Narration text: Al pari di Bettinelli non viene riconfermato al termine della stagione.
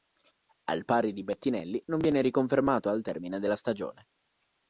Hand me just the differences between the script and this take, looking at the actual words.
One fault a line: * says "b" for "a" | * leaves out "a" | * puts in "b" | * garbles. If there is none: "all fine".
all fine